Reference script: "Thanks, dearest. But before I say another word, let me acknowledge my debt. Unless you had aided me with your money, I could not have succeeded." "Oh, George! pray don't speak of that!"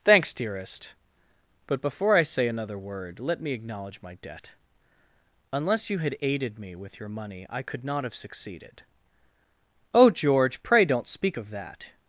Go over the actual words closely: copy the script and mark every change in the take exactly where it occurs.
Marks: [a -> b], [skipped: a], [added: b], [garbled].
"Thanks, dearest. But before I say another word, let me acknowledge my debt. Unless you had aided me with your money, I could not have succeeded." "Oh, George! pray don't speak of that!"